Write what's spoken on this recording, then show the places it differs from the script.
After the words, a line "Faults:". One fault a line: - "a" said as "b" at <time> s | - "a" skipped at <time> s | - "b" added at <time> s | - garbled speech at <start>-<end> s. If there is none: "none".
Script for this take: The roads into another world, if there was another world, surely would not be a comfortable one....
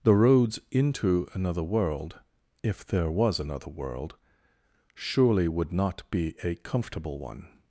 The roads into another world, if there was another world, surely would not be a comfortable one....
Faults:
none